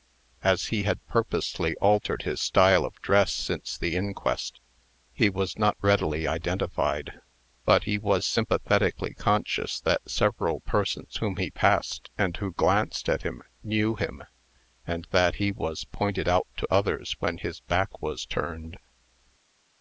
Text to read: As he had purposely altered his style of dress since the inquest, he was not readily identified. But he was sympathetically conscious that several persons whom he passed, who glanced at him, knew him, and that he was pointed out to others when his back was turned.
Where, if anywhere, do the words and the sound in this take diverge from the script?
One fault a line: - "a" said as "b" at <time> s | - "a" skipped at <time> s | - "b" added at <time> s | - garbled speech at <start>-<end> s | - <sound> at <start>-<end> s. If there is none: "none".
- "and" added at 12.2 s